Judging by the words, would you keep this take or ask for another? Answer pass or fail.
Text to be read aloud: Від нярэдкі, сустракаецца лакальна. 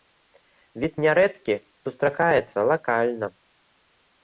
pass